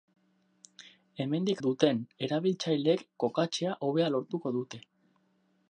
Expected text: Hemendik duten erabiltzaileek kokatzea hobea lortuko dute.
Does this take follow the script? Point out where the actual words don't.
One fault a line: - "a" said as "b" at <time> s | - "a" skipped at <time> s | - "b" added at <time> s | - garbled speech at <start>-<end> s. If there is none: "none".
none